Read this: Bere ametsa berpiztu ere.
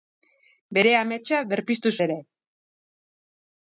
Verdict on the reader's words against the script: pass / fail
pass